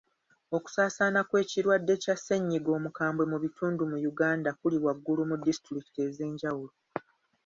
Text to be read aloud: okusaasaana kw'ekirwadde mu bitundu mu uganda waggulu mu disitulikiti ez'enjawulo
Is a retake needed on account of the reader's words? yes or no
yes